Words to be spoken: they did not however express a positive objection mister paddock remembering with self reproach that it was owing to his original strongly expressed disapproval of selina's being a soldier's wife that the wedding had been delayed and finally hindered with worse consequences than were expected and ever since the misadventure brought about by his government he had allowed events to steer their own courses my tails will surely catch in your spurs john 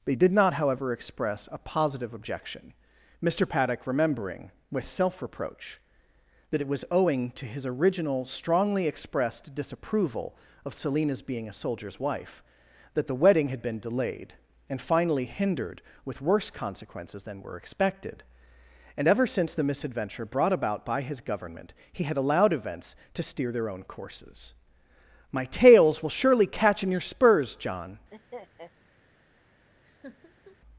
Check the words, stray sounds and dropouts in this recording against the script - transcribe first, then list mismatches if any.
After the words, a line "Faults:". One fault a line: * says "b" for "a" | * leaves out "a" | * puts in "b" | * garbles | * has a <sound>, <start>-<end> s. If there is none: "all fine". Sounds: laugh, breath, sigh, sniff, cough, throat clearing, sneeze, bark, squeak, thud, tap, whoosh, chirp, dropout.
they did not however express a positive objection mister paddock remembering with self reproach that it was owing to his original strongly expressed disapproval of selina's being a soldier's wife that the wedding had been delayed and finally hindered with worse consequences than were expected and ever since the misadventure brought about by his government he had allowed events to steer their own courses my tails will surely catch in your spurs john
Faults:
* has a laugh, 28.1-28.7 s
* has a laugh, 29.8-30.6 s